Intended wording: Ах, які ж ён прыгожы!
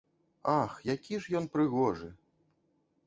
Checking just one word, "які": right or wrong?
right